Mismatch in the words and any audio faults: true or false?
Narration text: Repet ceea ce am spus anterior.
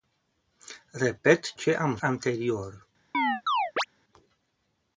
true